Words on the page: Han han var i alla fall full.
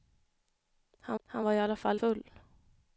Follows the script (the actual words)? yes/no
yes